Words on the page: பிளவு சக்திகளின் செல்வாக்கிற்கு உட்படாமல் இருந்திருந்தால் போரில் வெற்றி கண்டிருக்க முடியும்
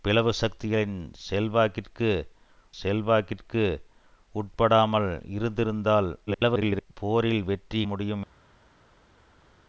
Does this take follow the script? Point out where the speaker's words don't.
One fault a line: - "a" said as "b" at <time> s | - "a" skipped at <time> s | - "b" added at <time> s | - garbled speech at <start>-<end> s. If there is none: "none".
- "செல்வாக்கிற்கு" added at 2.8 s
- garbled speech at 6.3-6.9 s
- "கண்டிருக்க" skipped at 7.8 s